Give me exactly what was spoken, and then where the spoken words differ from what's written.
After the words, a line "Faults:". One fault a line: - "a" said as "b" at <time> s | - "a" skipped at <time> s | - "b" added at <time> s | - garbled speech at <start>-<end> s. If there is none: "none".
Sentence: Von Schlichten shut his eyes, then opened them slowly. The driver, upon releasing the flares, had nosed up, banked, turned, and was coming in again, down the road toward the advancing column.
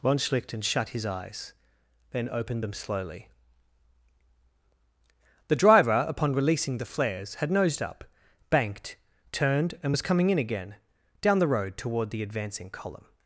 Von Schlichten shut his eyes, then opened them slowly. The driver, upon releasing the flares, had nosed up, banked, turned, and was coming in again, down the road toward the advancing column.
Faults:
none